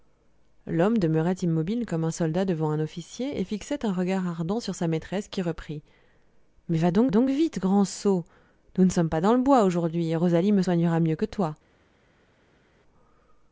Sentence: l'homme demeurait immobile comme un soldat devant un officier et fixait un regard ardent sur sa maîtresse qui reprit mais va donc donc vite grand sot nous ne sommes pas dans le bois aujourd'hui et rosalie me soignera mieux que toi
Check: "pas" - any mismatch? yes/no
no